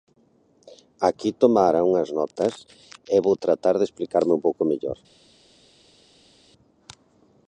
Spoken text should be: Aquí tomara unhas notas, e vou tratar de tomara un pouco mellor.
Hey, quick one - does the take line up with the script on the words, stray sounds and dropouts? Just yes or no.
no